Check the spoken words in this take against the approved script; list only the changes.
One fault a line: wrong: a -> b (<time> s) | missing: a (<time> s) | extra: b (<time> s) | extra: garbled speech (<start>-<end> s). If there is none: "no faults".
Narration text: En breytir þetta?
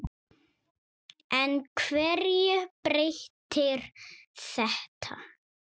extra: hverju (1.8 s)